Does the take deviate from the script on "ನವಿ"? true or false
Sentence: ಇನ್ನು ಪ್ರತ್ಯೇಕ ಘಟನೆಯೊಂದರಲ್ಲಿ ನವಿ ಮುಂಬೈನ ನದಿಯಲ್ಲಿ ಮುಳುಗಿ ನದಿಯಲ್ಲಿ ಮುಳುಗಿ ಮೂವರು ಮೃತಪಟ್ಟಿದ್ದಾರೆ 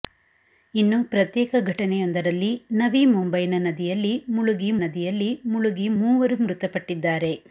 false